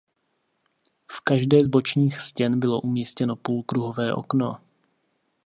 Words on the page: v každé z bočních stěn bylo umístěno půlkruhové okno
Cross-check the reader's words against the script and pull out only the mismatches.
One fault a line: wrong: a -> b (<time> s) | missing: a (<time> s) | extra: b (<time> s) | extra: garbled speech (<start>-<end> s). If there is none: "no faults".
no faults